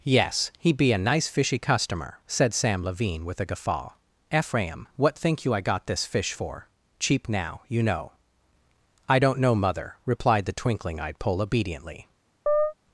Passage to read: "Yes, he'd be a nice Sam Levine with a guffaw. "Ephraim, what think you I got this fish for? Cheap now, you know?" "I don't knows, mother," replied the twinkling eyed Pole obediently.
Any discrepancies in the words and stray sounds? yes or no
yes